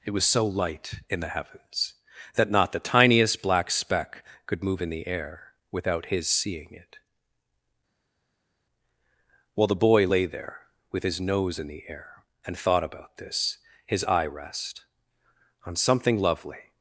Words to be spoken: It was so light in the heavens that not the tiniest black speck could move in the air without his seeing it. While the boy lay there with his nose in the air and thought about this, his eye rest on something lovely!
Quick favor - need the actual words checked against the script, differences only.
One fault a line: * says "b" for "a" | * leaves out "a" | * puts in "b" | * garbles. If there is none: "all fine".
all fine